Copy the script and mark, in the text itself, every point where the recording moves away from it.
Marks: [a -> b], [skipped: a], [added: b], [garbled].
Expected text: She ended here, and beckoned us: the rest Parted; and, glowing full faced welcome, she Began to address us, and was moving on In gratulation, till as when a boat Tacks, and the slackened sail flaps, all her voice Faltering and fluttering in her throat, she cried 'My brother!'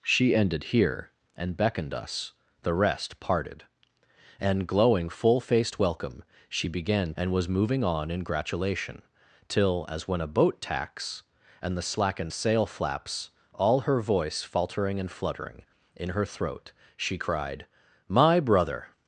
She ended here, and beckoned us: the rest Parted; and, glowing full faced welcome, she Began [skipped: to address us,] and was moving on In gratulation, till as when a boat Tacks, and the slackened sail flaps, all her voice Faltering and fluttering in her throat, she cried 'My brother!'